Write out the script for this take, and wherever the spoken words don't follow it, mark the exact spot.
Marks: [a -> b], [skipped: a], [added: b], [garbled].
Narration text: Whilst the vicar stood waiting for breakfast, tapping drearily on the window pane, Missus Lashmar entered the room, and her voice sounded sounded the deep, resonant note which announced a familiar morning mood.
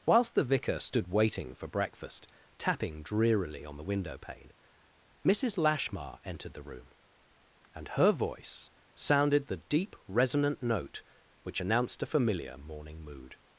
Whilst the vicar stood waiting for breakfast, tapping drearily on the window pane, Missus Lashmar entered the room, and her voice sounded [skipped: sounded] the deep, resonant note which announced a familiar morning mood.